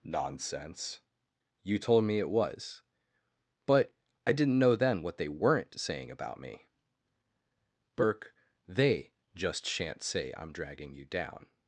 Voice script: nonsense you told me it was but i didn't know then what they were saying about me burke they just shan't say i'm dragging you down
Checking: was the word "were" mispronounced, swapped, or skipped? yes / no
yes